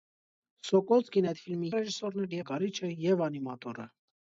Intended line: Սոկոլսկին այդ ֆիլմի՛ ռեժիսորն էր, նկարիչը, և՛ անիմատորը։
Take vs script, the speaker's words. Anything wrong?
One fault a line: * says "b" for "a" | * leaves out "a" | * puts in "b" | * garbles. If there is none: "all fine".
all fine